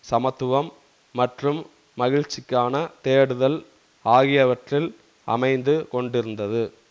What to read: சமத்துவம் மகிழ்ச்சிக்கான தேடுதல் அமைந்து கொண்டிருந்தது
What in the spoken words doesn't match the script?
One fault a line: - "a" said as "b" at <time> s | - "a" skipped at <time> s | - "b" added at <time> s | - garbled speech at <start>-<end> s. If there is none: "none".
- "மற்றும்" added at 1.1 s
- "ஆகியவற்றில்" added at 4.0 s